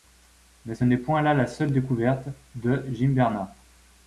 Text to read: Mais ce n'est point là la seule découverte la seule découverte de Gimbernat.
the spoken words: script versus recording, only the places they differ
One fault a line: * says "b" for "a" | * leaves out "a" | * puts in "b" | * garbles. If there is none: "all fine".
* leaves out "la seule découverte"